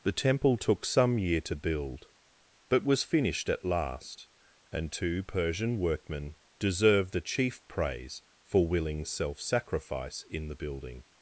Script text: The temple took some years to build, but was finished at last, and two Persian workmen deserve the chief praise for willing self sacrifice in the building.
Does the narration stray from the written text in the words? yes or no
yes